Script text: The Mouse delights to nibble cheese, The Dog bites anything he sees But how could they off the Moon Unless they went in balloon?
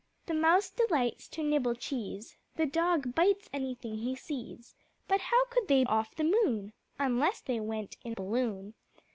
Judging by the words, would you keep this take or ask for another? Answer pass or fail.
pass